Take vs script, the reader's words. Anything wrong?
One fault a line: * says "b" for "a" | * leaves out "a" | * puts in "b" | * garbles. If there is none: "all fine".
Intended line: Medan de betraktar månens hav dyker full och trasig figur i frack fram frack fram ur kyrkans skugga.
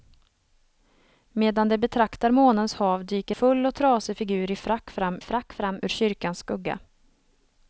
all fine